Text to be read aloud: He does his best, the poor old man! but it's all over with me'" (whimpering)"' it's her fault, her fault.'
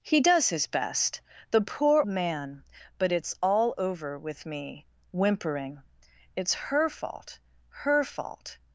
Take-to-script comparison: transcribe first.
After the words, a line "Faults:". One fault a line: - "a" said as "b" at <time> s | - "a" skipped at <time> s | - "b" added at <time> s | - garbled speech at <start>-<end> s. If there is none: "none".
He does his best, the poor man! but it's all over with me'" (whimpering)"' it's her fault, her fault.'
Faults:
- "old" skipped at 2.0 s